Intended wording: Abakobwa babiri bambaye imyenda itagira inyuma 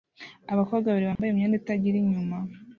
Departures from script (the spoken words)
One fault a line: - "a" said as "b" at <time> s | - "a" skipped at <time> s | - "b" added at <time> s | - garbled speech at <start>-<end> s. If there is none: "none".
none